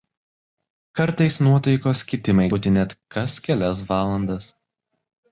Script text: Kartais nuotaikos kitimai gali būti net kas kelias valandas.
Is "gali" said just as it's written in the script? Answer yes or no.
no